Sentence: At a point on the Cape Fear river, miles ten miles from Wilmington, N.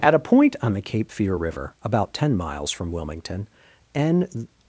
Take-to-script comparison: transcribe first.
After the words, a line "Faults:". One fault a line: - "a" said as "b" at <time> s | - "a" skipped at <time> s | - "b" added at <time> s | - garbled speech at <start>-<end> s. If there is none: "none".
At a point on the Cape Fear river, about ten miles from Wilmington, N.
Faults:
- "miles" said as "about" at 1.8 s